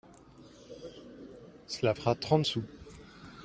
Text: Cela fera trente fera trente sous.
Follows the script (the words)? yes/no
no